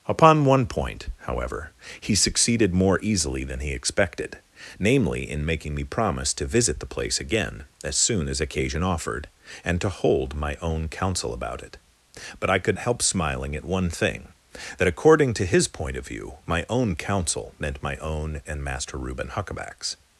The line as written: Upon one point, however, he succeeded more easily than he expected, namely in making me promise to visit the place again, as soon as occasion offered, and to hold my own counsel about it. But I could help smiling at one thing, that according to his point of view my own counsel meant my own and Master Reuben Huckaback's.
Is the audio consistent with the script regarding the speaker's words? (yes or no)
yes